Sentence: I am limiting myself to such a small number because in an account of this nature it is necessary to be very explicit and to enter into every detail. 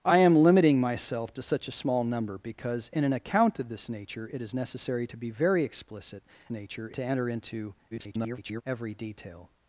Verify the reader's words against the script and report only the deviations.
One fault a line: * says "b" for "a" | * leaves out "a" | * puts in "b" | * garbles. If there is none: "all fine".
* says "nature" for "and"
* garbles